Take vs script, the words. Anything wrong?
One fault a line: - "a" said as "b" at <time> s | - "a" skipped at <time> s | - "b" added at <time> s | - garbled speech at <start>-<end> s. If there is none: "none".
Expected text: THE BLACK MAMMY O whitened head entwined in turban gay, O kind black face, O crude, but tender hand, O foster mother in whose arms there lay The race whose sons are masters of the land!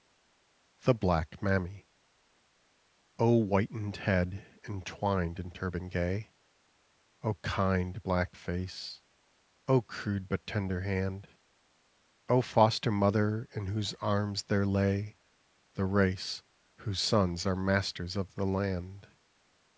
none